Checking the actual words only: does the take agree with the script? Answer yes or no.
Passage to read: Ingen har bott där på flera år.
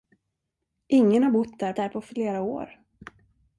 no